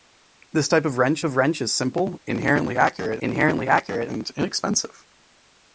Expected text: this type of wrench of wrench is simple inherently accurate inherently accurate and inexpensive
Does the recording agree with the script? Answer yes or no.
yes